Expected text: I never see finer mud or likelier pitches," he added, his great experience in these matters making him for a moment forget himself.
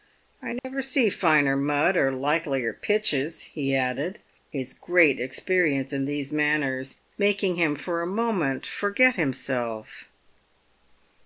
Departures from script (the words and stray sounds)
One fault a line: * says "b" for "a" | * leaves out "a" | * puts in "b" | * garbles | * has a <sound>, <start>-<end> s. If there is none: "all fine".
* has a dropout, 0.6-0.6 s